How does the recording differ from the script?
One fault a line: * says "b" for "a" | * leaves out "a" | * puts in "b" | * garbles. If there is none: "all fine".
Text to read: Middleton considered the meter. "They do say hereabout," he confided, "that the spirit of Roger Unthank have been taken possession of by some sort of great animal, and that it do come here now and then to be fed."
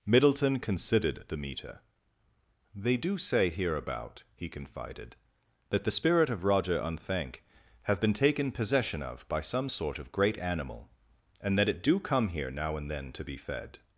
all fine